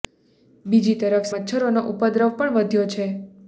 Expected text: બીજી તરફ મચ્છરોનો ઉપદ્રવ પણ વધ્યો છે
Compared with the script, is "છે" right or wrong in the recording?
right